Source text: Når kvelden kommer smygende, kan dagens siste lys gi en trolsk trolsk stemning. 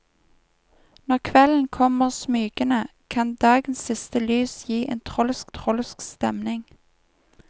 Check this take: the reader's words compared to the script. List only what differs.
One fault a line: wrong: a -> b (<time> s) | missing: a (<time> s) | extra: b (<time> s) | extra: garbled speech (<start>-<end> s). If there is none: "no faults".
no faults